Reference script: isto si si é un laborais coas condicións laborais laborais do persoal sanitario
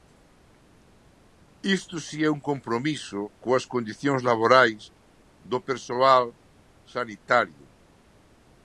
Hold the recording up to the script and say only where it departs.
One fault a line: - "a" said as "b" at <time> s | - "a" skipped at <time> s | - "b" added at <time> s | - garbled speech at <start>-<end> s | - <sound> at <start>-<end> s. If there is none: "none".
- "si" skipped at 2.2 s
- "laborais" said as "compromiso" at 2.5 s
- "laborais" skipped at 4.8 s